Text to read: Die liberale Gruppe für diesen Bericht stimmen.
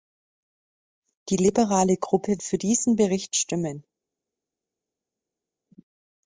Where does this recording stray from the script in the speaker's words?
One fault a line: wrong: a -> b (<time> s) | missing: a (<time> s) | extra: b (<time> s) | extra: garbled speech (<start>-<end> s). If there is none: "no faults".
no faults